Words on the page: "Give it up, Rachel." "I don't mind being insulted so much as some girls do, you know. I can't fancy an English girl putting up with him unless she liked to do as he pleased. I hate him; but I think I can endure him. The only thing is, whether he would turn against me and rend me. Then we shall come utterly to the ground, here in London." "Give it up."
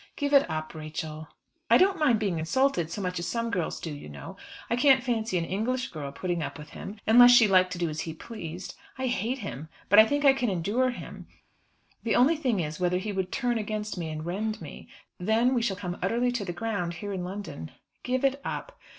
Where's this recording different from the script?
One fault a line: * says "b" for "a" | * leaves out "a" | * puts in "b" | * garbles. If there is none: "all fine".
all fine